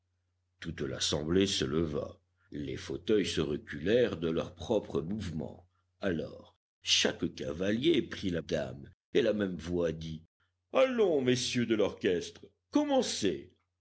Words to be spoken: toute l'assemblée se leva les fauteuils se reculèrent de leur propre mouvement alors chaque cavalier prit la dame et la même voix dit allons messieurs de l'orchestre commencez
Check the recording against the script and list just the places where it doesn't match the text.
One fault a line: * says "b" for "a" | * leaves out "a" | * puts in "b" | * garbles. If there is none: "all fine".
all fine